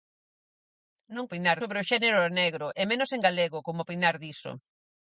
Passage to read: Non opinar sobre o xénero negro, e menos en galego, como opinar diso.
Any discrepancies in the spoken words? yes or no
no